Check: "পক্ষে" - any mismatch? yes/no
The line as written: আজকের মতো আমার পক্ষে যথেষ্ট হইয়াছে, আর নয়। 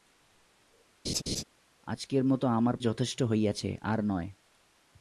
yes